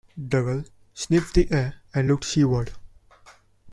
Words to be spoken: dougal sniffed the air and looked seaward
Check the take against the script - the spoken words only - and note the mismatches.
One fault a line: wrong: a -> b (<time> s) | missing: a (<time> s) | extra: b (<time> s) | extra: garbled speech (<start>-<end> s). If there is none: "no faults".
no faults